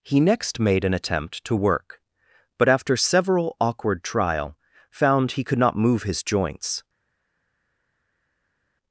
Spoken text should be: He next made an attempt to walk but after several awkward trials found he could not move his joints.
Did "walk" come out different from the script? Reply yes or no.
yes